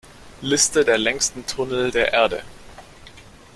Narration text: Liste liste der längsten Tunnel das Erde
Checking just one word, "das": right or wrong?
wrong